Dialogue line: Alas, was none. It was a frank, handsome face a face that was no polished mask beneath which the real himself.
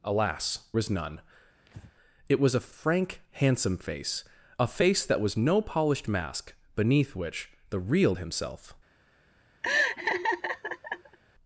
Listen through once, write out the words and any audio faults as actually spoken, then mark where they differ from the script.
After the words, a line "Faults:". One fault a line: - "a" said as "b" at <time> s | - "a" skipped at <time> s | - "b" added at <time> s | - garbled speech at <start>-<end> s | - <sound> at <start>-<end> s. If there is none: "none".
Alas, was none. It was a frank, handsome face a face that was no polished mask beneath which the real himself.
Faults:
- breath at 1.7-1.9 s
- laugh at 9.6-11.2 s